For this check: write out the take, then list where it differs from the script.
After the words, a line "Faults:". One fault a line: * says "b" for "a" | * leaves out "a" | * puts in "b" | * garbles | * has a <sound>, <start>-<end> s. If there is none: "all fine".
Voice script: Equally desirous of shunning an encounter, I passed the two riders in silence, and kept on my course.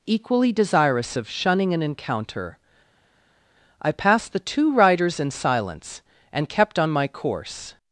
Equally desirous of shunning an encounter, I passed the two riders in silence, and kept on my course.
Faults:
all fine